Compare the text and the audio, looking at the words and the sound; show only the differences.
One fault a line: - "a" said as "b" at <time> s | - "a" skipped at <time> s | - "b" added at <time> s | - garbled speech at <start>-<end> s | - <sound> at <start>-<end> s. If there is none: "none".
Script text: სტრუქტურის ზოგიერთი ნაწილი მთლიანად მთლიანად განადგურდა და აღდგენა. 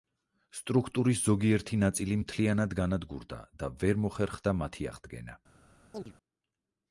- "მთლიანად" skipped at 2.8 s
- "ვერ მოხერხდა მათი" added at 3.8 s
- chirp at 5.9-6.1 s